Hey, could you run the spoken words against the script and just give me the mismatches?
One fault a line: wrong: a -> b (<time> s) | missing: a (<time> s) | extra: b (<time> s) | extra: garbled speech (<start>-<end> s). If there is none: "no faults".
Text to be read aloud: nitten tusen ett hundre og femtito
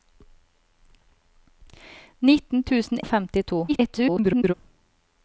missing: ett hundre (3.0 s)
extra: garbled speech (3.7-4.5 s)